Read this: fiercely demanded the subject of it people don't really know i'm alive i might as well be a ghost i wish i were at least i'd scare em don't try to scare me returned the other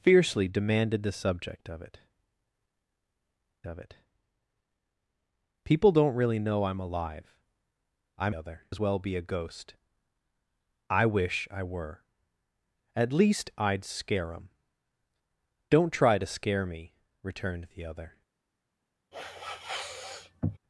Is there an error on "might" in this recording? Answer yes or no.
yes